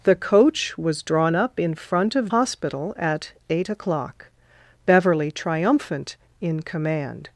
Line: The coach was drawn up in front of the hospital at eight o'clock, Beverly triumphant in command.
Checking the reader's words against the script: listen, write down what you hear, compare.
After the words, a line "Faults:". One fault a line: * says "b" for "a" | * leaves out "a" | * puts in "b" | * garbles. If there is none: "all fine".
The coach was drawn up in front of hospital at eight o'clock, Beverly triumphant in command.
Faults:
* leaves out "the"